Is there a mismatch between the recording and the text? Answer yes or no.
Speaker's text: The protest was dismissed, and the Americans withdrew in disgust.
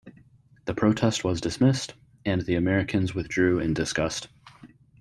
no